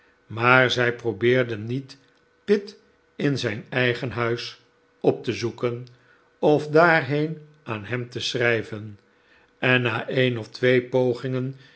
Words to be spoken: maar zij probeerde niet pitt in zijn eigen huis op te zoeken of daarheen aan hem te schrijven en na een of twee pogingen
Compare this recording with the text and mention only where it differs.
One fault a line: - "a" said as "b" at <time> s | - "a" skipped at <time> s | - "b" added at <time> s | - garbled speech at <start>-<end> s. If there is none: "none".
none